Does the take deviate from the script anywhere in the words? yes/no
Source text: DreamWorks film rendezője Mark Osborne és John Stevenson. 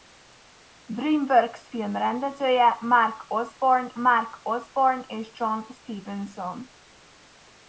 yes